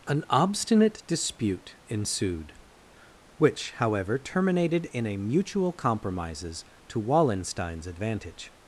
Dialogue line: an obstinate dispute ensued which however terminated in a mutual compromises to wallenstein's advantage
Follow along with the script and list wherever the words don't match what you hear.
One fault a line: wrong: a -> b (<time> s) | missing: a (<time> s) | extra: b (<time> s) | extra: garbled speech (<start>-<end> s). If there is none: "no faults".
no faults